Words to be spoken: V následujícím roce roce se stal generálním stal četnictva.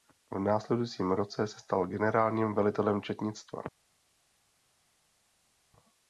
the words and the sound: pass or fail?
fail